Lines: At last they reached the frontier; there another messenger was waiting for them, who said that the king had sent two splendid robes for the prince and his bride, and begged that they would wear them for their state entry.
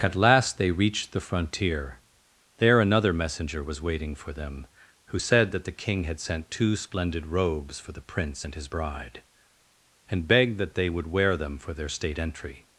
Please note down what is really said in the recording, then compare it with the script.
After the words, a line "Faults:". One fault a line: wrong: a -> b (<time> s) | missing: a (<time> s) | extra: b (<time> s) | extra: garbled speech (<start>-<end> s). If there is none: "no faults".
At last they reached the frontier; there another messenger was waiting for them, who said that the king had sent two splendid robes for the prince and his bride, and begged that they would wear them for their state entry.
Faults:
no faults